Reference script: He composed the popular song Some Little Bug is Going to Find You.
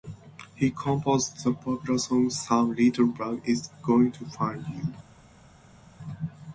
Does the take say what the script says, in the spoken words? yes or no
yes